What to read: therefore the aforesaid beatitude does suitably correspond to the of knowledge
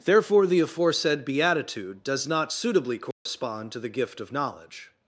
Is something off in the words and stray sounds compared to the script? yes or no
yes